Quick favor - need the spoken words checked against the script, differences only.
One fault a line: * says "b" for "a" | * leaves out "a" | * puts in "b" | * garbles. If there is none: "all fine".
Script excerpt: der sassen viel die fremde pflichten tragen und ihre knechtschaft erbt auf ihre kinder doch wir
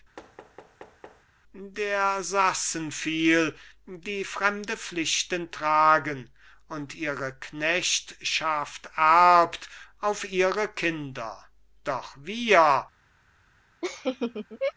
all fine